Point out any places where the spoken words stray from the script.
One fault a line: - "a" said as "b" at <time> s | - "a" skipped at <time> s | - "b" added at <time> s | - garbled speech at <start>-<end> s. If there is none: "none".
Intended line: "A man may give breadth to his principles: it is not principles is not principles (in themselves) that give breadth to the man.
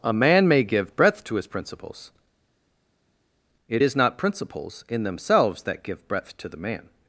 - "is not principles" skipped at 4.9 s